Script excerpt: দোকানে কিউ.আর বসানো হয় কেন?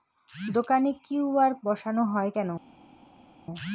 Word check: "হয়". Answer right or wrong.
right